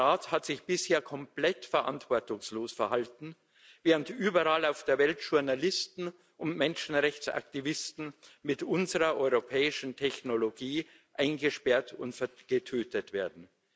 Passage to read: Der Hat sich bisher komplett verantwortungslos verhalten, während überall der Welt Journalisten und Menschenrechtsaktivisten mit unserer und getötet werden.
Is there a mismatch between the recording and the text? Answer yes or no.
yes